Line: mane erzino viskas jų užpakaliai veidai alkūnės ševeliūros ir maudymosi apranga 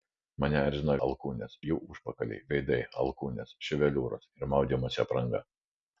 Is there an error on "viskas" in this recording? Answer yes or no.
yes